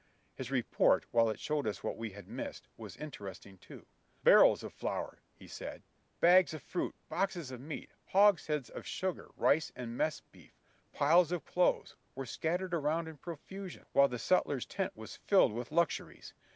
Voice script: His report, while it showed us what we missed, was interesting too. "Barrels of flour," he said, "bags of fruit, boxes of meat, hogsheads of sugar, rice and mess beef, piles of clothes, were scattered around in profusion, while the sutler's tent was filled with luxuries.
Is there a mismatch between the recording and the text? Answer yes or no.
yes